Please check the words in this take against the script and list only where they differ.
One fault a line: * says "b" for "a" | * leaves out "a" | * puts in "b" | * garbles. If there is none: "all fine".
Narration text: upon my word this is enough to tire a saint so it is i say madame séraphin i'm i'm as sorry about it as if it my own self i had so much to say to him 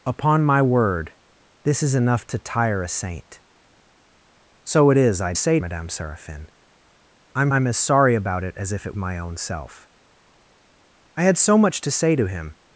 all fine